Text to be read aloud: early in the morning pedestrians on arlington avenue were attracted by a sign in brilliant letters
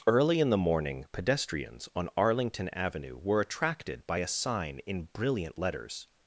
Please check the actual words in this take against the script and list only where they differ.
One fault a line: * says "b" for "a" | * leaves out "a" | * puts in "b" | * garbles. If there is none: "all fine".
all fine